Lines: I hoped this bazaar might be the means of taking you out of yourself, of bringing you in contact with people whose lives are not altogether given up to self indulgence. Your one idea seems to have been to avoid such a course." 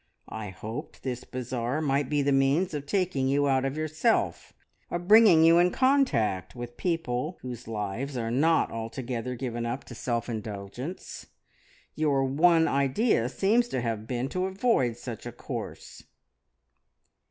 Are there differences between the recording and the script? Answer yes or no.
no